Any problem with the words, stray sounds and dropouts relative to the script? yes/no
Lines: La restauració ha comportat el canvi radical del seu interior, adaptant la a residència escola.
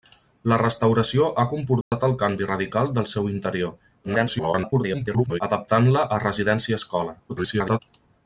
yes